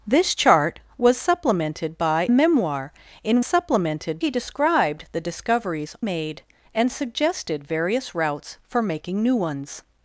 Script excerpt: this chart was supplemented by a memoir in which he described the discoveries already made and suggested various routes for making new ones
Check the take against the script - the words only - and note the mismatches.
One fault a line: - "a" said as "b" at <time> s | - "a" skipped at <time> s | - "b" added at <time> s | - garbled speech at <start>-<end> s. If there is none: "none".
- "a" skipped at 2.3 s
- "which" said as "supplemented" at 3.4 s
- "already" skipped at 6.0 s